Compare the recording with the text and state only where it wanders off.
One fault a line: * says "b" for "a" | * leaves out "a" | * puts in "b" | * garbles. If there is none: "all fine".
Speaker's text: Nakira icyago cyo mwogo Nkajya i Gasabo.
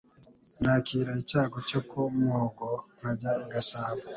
* puts in "ku"